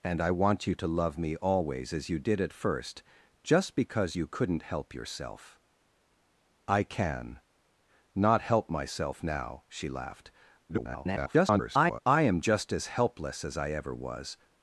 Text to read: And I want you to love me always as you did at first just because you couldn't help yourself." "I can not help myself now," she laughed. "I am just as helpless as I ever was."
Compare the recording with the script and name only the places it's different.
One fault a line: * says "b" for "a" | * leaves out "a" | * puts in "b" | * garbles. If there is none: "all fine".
* garbles